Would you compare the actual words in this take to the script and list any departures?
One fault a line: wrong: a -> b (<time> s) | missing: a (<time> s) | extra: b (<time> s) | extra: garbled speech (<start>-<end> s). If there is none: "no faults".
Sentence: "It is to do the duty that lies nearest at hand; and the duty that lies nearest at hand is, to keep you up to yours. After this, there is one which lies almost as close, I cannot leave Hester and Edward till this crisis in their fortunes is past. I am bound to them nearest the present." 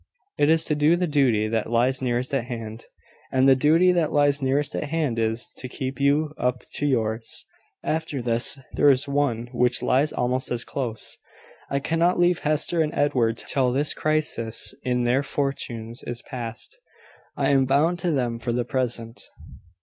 wrong: nearest -> for (18.4 s)